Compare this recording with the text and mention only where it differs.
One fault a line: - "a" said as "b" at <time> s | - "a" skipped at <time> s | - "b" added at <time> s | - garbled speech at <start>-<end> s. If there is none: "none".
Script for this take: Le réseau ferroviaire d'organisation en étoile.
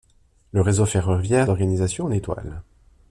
none